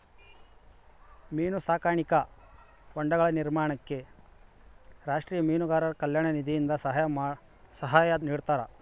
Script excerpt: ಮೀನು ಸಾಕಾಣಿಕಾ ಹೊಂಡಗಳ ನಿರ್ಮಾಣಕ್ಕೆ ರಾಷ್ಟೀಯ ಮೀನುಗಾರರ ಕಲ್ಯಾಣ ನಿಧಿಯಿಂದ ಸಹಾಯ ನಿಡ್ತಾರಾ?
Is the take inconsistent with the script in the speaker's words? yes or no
no